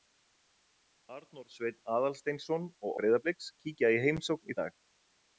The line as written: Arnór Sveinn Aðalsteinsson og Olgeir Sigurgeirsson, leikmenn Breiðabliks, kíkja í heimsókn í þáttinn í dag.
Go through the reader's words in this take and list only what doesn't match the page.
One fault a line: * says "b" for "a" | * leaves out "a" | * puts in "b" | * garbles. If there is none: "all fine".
* leaves out "Olgeir Sigurgeirsson leikmenn"
* leaves out "þáttinn"